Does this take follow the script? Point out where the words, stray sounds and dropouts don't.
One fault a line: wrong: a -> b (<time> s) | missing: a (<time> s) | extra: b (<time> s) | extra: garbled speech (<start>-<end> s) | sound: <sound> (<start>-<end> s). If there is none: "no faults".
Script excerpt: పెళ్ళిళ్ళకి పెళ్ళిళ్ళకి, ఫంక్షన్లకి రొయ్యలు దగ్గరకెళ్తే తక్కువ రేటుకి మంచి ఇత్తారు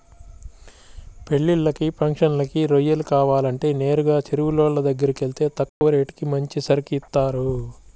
missing: పెళ్ళిళ్ళకి (1.9 s)
extra: కావాలంటే నేరుగా చెరువులోళ్ళ (3.1 s)
sound: dropout (5.7-5.8 s)
extra: సరుకు (6.6 s)